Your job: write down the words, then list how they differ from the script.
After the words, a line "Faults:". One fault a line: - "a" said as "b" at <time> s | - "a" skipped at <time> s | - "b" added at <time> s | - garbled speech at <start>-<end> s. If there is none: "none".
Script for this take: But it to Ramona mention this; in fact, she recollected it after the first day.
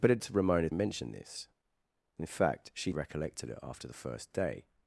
But it to Ramona mention this; in fact, she recollected it after the first day.
Faults:
none